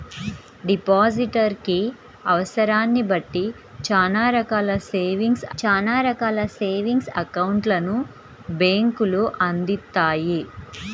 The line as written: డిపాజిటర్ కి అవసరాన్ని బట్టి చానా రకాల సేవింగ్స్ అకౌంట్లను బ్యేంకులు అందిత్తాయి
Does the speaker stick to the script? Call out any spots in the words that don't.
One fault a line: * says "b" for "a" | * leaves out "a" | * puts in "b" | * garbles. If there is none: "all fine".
* puts in "చానా రకాల సేవింగ్స్"